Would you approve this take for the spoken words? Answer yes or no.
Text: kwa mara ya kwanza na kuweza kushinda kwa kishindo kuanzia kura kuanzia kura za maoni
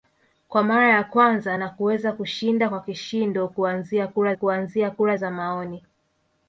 yes